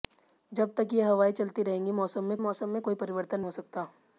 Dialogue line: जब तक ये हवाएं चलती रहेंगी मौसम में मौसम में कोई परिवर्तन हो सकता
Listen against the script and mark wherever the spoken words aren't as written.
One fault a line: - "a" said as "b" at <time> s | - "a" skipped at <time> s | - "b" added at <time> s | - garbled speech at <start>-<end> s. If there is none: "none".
none